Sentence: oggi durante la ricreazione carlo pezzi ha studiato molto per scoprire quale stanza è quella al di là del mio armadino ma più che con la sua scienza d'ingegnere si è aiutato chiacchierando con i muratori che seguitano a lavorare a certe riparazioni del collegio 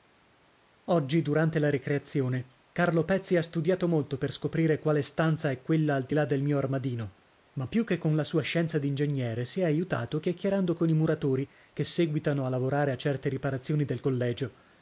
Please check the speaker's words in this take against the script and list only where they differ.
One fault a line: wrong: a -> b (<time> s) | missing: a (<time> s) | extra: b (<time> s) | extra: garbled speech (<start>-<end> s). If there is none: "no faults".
no faults